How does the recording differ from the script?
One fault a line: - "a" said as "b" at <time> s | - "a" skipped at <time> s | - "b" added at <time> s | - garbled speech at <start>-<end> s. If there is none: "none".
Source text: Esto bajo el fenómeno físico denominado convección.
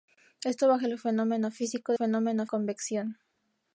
- "denominado" said as "fenómeno" at 1.9 s